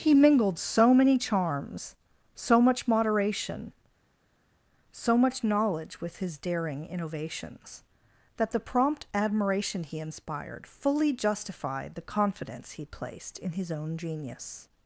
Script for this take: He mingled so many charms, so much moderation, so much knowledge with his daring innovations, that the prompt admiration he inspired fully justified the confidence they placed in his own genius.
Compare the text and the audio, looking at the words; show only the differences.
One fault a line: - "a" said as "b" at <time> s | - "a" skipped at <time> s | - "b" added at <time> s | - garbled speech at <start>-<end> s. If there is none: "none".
- "they" said as "he" at 12.7 s